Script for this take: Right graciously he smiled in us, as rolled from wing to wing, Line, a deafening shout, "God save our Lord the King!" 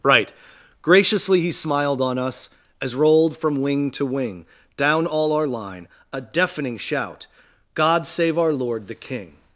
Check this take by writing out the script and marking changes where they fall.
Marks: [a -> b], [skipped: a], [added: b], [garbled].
Right graciously he smiled [in -> on] us, as rolled from wing to wing, [added: Down all our] Line, a deafening shout, "God save our Lord the King!"